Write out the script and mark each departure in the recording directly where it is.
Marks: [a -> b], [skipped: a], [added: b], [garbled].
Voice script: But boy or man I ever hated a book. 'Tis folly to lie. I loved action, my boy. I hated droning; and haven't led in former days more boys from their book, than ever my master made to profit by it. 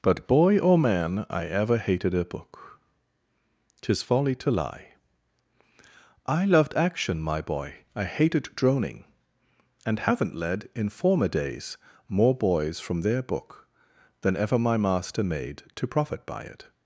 But boy or man I ever hated a book. 'Tis folly to lie. I loved action, my boy. I hated droning; and haven't led in former days more boys from their book, than ever my master made to profit by it.